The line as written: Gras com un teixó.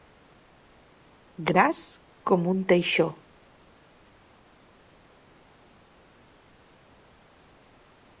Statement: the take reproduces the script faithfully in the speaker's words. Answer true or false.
true